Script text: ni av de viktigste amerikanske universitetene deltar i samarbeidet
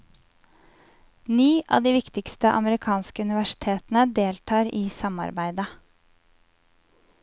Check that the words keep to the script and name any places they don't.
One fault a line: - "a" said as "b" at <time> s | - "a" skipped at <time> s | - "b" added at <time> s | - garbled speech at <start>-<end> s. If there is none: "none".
none